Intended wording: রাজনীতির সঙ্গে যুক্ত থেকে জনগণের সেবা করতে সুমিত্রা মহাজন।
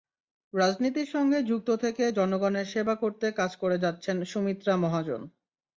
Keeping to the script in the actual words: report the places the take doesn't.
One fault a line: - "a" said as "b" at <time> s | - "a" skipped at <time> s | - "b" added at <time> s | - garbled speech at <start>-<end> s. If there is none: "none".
- "কাজ করে যাচ্ছেন" added at 3.3 s